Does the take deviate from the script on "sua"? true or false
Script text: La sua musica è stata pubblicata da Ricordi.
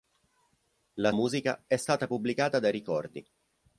true